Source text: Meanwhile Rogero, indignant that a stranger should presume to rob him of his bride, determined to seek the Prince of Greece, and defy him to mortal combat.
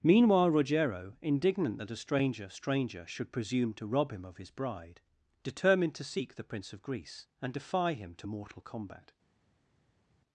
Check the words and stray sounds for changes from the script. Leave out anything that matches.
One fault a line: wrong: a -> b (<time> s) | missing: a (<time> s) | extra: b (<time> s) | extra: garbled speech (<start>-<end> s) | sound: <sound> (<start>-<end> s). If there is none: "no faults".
extra: stranger (2.5 s)